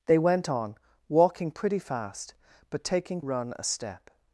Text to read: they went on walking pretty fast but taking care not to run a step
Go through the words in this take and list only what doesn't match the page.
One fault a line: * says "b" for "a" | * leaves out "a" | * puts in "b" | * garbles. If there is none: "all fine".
* leaves out "care not to"